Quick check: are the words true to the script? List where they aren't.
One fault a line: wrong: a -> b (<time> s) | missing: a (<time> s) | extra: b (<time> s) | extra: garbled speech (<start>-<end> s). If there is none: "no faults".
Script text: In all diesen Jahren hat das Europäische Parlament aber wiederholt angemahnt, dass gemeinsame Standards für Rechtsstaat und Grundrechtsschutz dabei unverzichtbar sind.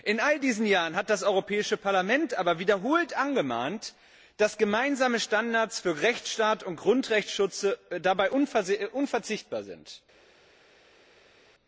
no faults